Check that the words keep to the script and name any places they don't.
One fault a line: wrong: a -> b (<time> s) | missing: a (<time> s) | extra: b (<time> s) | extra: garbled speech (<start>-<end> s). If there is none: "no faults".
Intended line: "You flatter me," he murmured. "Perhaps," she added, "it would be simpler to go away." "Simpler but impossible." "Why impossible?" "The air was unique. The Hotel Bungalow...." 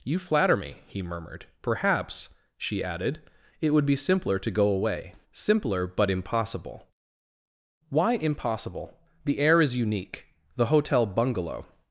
wrong: was -> is (9.6 s)